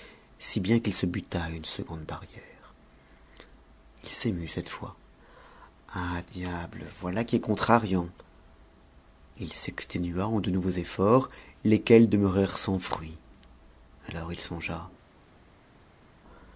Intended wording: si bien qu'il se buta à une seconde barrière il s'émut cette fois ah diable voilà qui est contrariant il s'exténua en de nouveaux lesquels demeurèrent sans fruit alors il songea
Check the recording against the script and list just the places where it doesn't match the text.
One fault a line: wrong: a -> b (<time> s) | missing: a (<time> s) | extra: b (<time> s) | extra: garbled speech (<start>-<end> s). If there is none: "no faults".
extra: efforts (10.7 s)